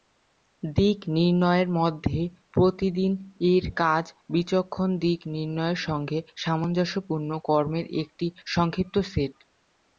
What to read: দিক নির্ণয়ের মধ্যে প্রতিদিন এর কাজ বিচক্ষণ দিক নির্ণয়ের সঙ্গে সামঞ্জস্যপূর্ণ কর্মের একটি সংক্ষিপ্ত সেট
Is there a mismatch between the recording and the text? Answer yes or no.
no